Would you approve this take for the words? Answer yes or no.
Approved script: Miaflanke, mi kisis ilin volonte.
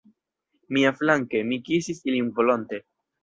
yes